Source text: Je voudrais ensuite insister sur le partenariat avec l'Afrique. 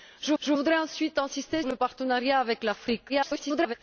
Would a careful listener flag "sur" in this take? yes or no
yes